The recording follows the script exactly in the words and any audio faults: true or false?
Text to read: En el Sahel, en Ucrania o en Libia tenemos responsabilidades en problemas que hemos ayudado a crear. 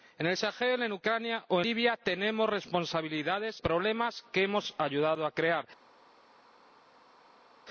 false